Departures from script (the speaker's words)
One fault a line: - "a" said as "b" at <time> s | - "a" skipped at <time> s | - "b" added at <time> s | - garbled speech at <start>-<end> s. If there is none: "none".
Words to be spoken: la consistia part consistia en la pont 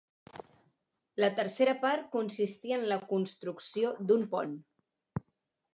- "consistia" said as "tercera" at 1.4 s
- "construcció d'un" added at 3.1 s